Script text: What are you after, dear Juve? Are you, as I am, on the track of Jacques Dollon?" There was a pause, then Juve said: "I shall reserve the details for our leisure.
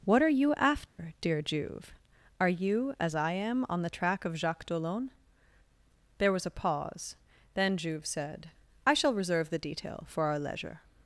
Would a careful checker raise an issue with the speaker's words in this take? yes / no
yes